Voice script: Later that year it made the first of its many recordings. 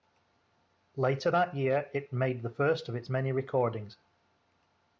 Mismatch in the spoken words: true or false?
false